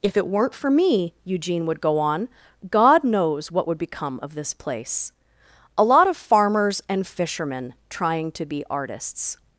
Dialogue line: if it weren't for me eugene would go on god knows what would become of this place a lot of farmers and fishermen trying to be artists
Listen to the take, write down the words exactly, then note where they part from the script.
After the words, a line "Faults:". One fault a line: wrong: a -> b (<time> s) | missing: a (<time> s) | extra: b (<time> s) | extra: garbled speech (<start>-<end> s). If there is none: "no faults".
if it weren't for me eugene would go on god knows what would become of this place a lot of farmers and fishermen trying to be artists
Faults:
no faults